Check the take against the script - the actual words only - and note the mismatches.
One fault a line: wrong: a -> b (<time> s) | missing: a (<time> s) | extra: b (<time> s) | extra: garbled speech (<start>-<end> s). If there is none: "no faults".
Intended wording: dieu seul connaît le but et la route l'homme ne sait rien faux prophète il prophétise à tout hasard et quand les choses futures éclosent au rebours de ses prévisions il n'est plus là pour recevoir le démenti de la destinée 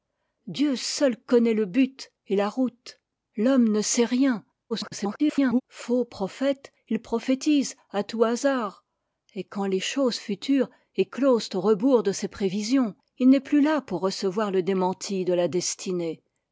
extra: garbled speech (4.7-5.6 s)